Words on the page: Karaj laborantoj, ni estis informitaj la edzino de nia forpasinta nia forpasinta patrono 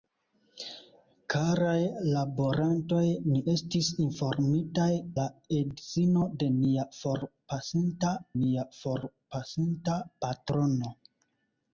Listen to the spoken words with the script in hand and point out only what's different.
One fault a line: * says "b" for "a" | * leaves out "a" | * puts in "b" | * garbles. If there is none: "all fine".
all fine